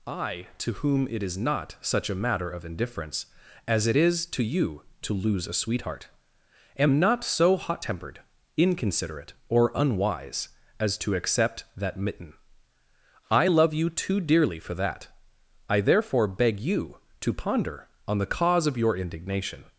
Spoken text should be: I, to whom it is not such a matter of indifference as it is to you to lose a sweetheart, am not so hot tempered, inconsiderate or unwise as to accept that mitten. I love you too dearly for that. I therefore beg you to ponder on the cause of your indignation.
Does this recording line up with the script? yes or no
yes